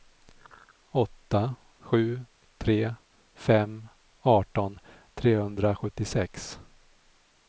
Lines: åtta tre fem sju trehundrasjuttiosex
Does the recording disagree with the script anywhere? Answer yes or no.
yes